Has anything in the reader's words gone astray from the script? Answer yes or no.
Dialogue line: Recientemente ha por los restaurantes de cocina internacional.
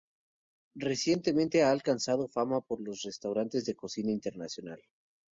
yes